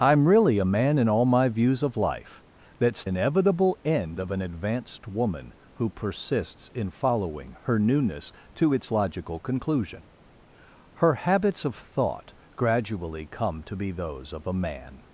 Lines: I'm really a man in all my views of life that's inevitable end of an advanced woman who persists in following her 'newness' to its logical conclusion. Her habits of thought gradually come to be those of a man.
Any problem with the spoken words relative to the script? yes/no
no